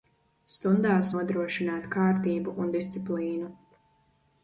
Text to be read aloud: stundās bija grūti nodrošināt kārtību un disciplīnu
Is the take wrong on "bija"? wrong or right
wrong